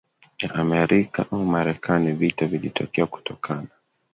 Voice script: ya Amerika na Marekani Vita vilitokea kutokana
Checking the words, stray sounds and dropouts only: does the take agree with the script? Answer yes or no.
no